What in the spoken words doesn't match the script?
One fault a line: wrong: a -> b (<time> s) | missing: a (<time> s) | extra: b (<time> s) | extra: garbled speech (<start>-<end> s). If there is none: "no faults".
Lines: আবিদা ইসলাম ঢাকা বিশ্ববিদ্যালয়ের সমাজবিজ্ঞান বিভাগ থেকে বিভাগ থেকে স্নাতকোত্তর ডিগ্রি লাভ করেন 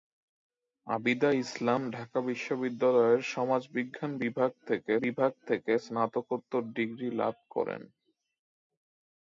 no faults